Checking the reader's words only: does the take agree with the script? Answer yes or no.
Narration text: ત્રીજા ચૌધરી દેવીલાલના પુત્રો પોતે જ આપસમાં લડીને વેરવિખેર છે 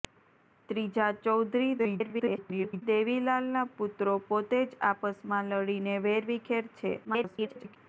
no